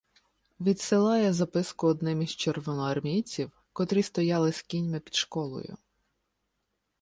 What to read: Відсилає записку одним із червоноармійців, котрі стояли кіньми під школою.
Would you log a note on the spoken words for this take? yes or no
yes